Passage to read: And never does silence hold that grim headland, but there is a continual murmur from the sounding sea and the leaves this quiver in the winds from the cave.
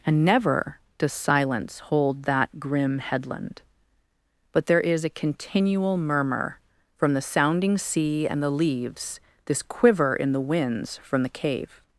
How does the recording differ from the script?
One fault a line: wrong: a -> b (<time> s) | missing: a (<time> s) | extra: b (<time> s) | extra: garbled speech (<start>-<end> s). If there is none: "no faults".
no faults